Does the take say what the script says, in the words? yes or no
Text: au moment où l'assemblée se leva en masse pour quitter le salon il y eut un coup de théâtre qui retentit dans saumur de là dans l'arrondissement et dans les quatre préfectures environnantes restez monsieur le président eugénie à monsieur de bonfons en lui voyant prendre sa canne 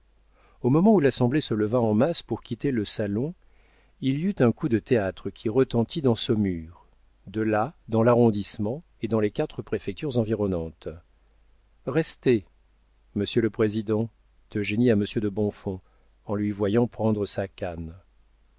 yes